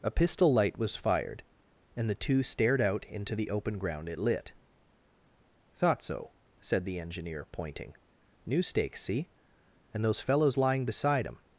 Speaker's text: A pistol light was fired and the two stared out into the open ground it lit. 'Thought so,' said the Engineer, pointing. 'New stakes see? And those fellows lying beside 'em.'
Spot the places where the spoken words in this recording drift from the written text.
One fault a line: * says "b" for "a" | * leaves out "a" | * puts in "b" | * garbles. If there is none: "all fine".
all fine